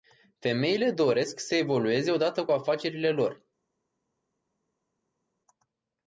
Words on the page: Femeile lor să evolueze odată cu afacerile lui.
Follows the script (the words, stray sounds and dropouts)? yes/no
no